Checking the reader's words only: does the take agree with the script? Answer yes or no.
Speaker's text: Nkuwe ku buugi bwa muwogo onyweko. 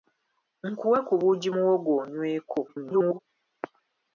no